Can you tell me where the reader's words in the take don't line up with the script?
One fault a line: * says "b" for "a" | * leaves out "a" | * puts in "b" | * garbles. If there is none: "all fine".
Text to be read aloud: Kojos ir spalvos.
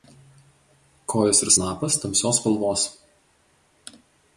* puts in "snapas tamsios"